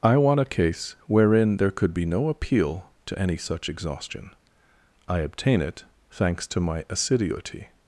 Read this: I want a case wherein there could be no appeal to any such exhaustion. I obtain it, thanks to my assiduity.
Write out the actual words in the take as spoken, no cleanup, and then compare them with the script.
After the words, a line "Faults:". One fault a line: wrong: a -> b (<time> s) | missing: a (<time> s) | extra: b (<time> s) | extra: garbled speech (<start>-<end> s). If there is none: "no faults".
I want a case wherein there could be no appeal to any such exhaustion. I obtain it, thanks to my assiduity.
Faults:
no faults